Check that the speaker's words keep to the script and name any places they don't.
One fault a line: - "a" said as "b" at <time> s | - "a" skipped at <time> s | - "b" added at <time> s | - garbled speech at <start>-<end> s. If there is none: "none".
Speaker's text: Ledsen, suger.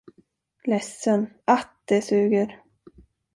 - "att det" added at 1.4 s